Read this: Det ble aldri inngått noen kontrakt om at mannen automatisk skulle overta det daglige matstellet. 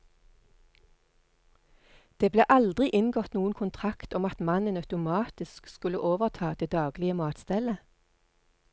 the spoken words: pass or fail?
pass